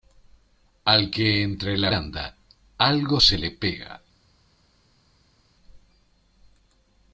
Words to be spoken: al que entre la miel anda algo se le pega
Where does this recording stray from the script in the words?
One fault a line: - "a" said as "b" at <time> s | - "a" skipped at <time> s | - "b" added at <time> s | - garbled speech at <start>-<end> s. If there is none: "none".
- "miel" skipped at 1.9 s